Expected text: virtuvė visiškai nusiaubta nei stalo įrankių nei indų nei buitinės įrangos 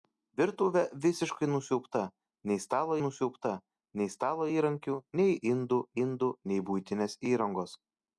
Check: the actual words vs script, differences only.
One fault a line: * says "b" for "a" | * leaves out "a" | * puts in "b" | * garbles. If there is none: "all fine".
* puts in "nusiaubta nei stalo"
* puts in "indų"